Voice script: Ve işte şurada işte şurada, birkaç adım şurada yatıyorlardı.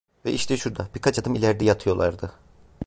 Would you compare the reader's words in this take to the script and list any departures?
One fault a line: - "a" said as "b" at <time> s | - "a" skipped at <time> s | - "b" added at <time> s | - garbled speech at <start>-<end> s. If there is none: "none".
- "işte şurada" skipped at 0.9 s
- "şurada" said as "ileride" at 1.4 s